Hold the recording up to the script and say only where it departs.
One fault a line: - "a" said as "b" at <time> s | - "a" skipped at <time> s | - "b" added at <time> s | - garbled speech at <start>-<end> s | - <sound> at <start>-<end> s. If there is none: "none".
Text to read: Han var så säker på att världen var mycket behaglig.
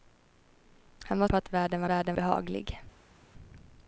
- "så säker" skipped at 1.3 s
- "mycket" said as "världen" at 1.9 s